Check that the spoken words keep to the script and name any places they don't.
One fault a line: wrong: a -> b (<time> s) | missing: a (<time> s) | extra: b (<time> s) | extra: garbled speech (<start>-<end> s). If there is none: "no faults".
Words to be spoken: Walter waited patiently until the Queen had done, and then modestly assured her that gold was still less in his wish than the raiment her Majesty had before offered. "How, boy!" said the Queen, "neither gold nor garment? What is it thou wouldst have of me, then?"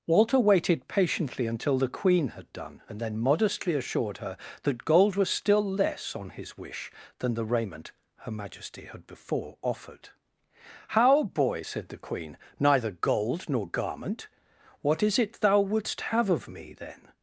wrong: in -> on (6.2 s)